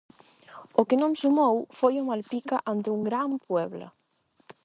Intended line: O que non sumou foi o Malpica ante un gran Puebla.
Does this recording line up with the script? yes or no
yes